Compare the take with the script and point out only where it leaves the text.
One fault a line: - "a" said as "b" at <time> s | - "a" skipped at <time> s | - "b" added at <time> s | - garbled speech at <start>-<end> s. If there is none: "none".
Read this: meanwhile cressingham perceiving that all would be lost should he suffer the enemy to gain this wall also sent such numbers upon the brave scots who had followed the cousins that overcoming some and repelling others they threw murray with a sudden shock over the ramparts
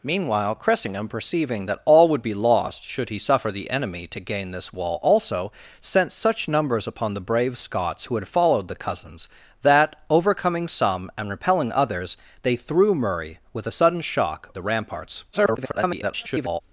- "over" skipped at 14.5 s
- garbled speech at 15.3-16.6 s